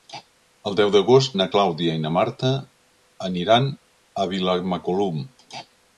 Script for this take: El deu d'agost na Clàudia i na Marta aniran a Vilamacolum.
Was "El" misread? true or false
false